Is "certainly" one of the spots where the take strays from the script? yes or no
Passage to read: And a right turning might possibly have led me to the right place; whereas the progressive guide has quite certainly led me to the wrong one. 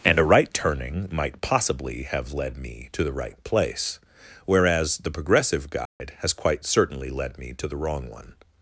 no